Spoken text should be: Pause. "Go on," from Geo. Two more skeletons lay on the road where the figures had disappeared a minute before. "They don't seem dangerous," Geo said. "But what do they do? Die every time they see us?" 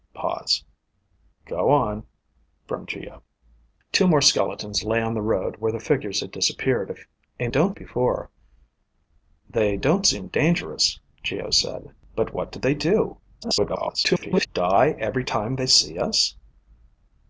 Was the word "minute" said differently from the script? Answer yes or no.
yes